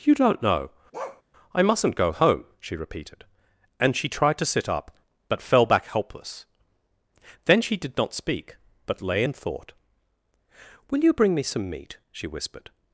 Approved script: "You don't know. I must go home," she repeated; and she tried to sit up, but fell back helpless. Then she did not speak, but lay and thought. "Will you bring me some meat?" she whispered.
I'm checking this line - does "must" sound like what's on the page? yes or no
no